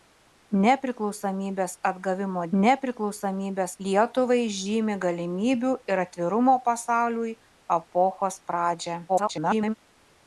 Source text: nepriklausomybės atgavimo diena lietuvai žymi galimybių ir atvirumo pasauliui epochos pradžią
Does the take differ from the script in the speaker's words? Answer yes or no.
yes